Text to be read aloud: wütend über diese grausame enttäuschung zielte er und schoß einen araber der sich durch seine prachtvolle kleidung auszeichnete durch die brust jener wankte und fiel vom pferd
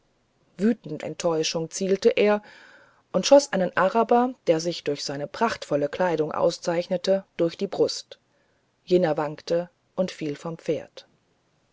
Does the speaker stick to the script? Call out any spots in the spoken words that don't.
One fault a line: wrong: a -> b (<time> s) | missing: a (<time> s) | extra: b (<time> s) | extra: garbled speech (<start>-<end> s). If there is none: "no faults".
missing: über diese grausame (1.0 s)